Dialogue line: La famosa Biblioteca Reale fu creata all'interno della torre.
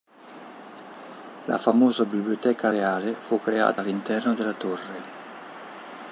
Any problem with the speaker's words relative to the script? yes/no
no